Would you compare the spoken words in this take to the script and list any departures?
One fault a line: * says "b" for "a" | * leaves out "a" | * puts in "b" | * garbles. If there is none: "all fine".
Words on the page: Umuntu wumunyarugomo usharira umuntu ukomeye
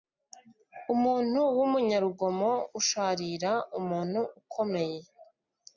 all fine